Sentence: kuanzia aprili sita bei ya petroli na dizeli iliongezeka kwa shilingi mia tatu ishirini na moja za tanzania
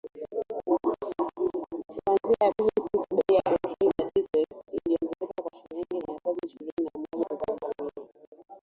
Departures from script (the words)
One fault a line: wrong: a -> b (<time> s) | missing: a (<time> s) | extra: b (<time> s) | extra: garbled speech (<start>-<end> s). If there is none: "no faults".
no faults